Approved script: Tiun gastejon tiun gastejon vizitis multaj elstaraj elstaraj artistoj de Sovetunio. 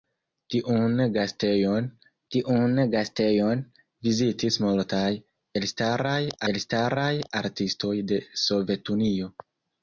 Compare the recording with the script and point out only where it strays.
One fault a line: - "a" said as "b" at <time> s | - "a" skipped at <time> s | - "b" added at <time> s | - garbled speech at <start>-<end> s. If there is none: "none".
none